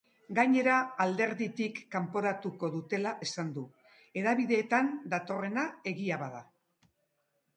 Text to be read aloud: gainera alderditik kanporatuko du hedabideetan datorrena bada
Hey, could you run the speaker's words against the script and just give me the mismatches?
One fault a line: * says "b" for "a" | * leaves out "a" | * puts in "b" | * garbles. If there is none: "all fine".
* puts in "dutela esan"
* puts in "egia"